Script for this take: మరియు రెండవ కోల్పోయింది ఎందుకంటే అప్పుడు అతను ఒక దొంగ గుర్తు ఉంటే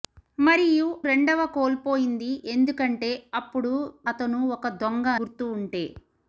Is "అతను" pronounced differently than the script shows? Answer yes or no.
no